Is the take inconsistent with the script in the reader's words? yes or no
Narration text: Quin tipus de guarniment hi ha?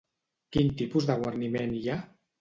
no